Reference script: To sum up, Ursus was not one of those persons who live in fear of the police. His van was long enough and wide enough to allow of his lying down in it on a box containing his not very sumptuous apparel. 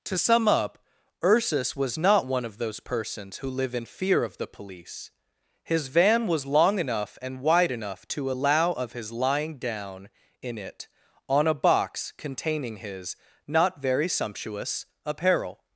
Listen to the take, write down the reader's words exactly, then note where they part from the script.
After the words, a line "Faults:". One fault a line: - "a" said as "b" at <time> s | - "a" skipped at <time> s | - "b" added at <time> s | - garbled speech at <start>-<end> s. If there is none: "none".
To sum up, Ursus was not one of those persons who live in fear of the police. His van was long enough and wide enough to allow of his lying down in it on a box containing his not very sumptuous apparel.
Faults:
none